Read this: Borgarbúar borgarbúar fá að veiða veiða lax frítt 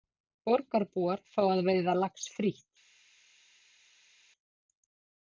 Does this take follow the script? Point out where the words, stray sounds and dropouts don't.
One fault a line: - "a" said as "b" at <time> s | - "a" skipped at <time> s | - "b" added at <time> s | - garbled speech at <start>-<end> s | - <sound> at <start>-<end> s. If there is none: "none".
- "borgarbúar" skipped at 1.2 s
- "veiða" skipped at 2.0 s